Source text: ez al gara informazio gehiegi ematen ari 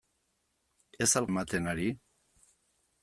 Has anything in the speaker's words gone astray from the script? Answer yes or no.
yes